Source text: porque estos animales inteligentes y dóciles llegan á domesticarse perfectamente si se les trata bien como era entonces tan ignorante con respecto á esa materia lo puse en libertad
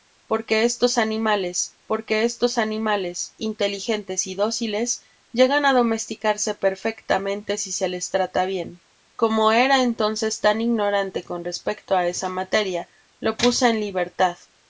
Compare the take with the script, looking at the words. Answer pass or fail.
fail